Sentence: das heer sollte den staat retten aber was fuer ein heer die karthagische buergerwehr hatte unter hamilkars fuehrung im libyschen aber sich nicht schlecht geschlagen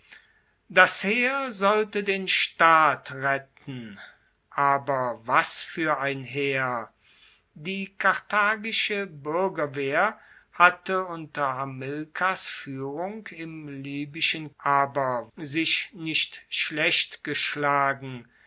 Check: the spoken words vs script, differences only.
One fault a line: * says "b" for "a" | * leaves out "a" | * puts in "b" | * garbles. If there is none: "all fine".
all fine